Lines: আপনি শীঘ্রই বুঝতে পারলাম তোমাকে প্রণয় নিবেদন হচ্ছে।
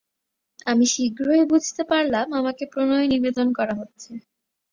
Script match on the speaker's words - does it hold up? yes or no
no